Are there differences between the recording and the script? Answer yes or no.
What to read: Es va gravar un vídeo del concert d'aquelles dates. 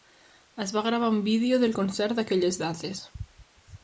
no